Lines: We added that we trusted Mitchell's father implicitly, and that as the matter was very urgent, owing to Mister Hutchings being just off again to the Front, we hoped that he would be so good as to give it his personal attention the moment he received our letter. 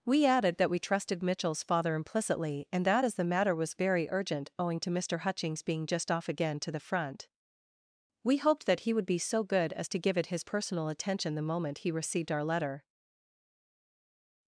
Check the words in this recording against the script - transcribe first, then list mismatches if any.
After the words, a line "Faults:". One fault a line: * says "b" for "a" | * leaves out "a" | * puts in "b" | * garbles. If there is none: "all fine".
We added that we trusted Mitchell's father implicitly, and that as the matter was very urgent, owing to Mister Hutchings being just off again to the Front, we hoped that he would be so good as to give it his personal attention the moment he received our letter.
Faults:
all fine